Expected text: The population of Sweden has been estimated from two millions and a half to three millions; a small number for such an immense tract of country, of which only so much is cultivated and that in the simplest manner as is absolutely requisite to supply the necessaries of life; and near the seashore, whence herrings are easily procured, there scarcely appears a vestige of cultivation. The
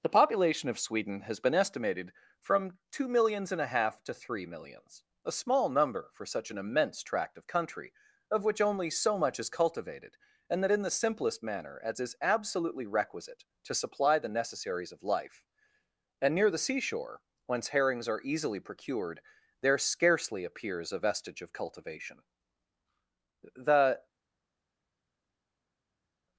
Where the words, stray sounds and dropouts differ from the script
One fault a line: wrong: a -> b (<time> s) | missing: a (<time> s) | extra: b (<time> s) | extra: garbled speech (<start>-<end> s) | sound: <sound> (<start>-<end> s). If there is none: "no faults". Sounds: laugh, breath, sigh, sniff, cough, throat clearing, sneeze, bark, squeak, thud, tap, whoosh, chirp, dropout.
no faults